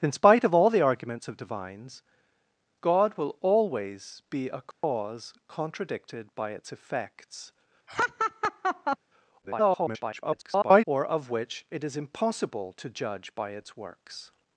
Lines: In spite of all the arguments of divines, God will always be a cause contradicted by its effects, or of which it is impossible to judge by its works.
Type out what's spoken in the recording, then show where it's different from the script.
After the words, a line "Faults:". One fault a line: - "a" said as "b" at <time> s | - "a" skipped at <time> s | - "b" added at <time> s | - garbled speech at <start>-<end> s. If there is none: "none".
In spite of all the arguments of divines, God will always be a cause contradicted by its effects, [garbled] or of which it is impossible to judge by its works.
Faults:
- garbled speech at 9.4-10.8 s